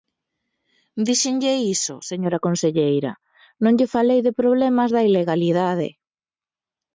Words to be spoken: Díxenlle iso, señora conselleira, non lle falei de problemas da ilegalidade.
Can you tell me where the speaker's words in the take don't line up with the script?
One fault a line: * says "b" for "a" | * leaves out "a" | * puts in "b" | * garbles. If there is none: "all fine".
all fine